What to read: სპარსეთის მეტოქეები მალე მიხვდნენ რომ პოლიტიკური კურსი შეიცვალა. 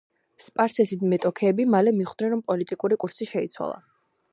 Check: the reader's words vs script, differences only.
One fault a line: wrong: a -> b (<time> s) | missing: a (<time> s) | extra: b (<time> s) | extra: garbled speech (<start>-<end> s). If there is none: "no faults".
no faults